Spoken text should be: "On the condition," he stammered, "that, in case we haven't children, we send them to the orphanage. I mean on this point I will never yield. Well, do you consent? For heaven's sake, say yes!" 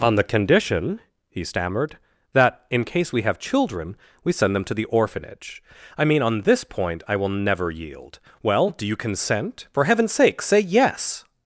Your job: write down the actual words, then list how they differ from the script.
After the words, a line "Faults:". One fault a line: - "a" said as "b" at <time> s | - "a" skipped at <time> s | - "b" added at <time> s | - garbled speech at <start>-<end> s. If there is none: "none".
"On the condition," he stammered, "that, in case we have children, we send them to the orphanage. I mean on this point I will never yield. Well, do you consent? For heaven's sake, say yes!"
Faults:
- "haven't" said as "have" at 3.2 s